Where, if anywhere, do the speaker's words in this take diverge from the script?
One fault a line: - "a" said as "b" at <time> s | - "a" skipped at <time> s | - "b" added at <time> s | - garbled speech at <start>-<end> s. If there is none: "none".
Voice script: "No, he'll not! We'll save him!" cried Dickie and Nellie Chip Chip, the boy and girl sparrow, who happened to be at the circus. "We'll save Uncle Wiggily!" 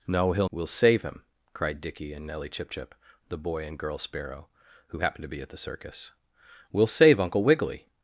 - "not" skipped at 0.5 s